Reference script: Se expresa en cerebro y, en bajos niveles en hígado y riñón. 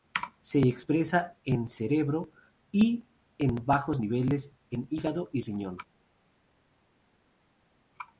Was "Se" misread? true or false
false